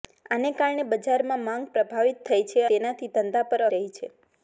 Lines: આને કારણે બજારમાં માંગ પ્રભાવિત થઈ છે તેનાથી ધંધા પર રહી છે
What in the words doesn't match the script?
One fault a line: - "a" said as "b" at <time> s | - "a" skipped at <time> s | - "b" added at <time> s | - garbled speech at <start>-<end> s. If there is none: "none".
none